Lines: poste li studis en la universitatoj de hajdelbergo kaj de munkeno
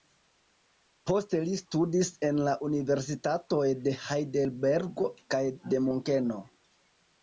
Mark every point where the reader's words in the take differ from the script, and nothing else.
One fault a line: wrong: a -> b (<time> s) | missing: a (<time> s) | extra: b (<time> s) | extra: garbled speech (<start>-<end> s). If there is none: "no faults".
no faults